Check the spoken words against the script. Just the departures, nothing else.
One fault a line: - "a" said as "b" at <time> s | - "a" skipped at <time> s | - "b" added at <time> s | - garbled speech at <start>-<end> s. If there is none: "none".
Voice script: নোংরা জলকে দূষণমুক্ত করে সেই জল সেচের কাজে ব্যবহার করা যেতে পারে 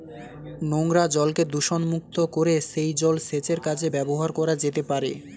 none